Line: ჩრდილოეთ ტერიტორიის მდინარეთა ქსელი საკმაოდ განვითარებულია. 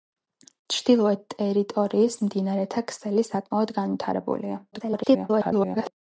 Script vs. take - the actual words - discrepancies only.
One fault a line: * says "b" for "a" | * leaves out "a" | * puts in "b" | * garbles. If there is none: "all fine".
* garbles